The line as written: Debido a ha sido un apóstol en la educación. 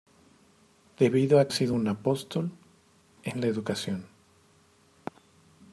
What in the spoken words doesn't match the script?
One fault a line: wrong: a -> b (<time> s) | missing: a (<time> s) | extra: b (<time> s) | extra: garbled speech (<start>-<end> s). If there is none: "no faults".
no faults